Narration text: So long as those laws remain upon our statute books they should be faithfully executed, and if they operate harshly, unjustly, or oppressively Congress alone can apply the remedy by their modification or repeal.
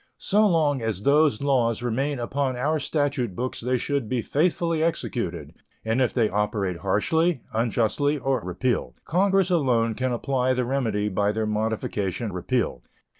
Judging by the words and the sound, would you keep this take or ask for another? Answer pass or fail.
fail